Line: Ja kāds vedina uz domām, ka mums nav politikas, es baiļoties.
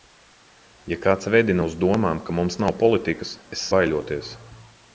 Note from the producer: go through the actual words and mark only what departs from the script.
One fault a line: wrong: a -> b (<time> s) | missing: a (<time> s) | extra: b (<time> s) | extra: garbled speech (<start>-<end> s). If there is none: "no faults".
no faults